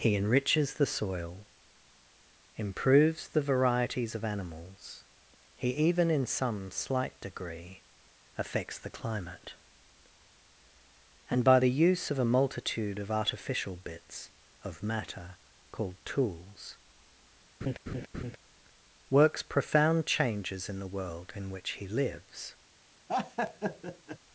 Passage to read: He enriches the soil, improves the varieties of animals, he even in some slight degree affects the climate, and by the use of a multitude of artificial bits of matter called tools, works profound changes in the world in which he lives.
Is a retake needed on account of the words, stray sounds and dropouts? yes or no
yes